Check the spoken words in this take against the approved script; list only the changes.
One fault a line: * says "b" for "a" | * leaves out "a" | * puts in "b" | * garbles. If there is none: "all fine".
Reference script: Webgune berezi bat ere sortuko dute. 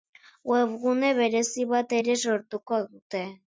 all fine